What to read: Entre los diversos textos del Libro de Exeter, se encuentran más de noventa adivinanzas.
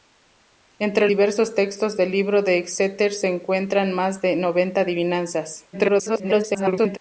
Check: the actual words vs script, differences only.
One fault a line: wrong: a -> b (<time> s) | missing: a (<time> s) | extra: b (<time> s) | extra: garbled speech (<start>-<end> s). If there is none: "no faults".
missing: los (1.1 s)
extra: garbled speech (5.7-7.0 s)